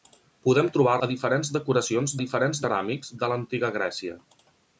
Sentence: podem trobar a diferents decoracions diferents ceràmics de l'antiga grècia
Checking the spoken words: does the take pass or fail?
pass